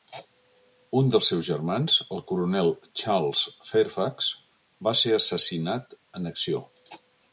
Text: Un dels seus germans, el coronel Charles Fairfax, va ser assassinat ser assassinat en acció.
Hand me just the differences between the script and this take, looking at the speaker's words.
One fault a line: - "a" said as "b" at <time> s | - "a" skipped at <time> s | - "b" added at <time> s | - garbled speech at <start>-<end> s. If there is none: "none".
- "ser assassinat" skipped at 6.0 s